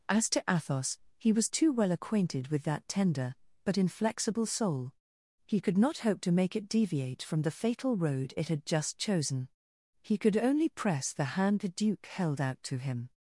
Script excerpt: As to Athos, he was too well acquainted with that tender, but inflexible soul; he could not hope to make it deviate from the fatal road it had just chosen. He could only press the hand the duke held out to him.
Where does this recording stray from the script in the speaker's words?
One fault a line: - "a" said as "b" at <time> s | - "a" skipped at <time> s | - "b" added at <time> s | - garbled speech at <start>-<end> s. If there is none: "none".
none